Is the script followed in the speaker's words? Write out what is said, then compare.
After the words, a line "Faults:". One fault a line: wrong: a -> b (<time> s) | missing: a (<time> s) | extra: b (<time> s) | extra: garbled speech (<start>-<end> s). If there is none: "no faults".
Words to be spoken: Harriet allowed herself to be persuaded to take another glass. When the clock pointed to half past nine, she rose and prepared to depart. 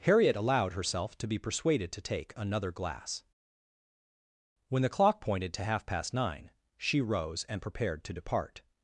Harriet allowed herself to be persuaded to take another glass. When the clock pointed to half past nine, she rose and prepared to depart.
Faults:
no faults